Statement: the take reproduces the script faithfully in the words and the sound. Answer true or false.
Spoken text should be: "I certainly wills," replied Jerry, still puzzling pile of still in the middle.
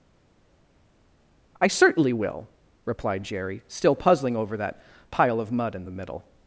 false